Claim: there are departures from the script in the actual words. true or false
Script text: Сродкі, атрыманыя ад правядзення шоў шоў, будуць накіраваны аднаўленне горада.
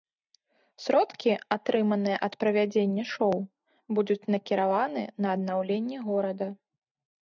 true